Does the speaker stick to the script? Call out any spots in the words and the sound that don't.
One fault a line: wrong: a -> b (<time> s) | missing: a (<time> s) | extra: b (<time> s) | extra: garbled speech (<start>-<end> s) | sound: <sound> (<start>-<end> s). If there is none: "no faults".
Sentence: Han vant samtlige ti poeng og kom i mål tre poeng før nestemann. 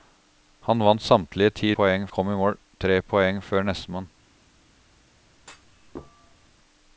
sound: thud (5.4-6.6 s)